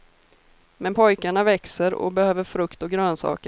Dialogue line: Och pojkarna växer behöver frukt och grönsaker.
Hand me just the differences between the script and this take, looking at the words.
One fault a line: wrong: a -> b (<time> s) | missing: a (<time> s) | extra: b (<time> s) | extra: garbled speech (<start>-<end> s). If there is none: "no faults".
wrong: Och -> Men (0.8 s)
extra: och (1.9 s)